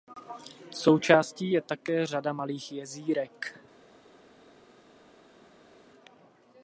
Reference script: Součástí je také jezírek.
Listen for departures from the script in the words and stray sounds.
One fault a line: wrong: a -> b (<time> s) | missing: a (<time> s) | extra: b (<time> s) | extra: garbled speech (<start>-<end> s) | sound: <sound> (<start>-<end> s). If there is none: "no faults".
extra: řada malých (2.1 s)